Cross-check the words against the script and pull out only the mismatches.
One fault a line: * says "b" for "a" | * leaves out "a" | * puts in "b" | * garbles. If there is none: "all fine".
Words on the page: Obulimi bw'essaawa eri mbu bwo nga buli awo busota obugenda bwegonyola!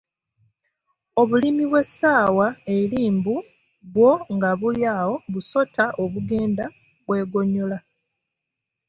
all fine